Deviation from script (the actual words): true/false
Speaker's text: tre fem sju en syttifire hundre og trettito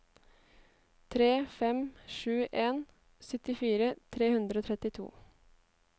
true